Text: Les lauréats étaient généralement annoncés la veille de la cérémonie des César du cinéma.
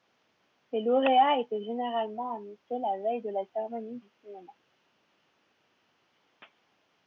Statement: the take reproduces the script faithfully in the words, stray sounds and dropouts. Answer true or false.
false